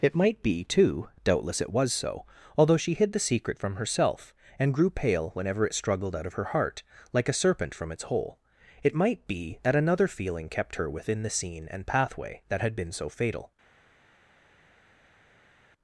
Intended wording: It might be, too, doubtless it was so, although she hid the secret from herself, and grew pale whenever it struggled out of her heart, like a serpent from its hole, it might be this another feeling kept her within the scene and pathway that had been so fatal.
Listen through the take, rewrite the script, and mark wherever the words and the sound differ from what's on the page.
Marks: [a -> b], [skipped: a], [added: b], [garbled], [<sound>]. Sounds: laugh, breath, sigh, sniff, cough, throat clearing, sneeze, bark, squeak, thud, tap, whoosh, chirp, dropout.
It might be, too, doubtless it was so, although she hid the secret from herself, and grew pale whenever it struggled out of her heart, like a serpent from its hole, it might be [this -> that] another feeling kept her within the scene and pathway that had been so fatal.